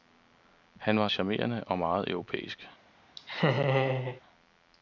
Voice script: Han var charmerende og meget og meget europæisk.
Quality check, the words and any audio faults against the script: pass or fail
fail